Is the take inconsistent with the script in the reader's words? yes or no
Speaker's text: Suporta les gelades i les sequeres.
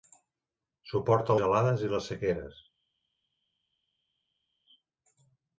yes